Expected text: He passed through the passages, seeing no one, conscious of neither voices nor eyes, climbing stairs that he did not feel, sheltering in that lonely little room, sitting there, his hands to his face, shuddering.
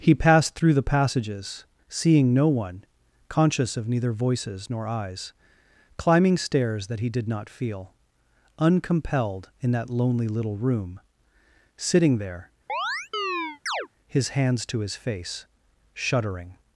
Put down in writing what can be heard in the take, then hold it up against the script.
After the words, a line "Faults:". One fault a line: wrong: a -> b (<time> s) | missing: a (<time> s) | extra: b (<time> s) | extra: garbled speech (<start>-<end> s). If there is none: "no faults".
He passed through the passages, seeing no one, conscious of neither voices nor eyes, climbing stairs that he did not feel, uncompelled in that lonely little room, sitting there, his hands to his face, shuddering.
Faults:
wrong: sheltering -> uncompelled (8.6 s)